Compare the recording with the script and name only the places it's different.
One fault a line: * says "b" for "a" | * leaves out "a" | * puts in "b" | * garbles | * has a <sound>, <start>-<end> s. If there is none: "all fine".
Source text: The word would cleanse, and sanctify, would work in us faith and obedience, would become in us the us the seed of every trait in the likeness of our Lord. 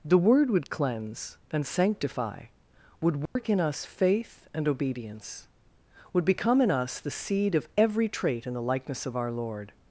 * has a dropout, 3.3-3.4 s
* leaves out "us the"